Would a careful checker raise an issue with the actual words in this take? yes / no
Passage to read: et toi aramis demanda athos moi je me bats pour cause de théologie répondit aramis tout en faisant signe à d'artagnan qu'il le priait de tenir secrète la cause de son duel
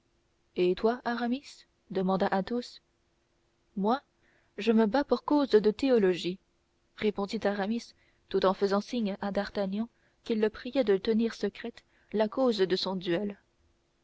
no